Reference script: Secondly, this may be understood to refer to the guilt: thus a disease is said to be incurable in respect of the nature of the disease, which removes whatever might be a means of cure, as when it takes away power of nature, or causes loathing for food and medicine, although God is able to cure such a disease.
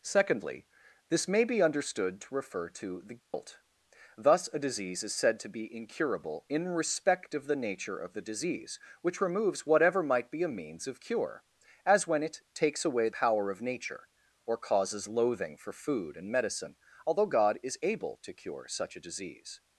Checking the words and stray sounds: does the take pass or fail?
fail